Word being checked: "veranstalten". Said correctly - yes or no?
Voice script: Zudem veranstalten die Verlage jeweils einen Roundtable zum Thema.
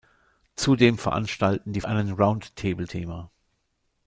yes